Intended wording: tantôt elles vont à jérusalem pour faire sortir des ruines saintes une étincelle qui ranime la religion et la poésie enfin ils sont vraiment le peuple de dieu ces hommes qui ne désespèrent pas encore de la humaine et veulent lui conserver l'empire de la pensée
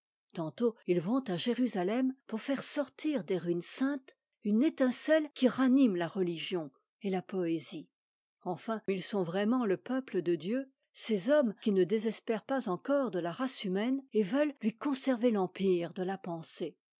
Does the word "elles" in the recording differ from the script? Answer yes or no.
yes